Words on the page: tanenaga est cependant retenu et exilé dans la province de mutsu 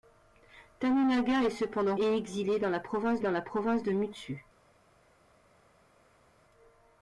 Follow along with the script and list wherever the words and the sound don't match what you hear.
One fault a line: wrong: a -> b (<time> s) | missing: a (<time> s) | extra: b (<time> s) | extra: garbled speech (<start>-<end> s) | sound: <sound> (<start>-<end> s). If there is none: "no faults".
missing: retenu (1.9 s)
extra: dans la province (3.2 s)